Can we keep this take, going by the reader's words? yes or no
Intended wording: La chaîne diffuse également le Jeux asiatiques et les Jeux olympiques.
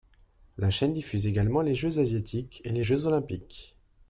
no